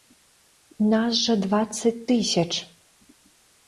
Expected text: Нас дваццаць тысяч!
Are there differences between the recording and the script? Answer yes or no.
yes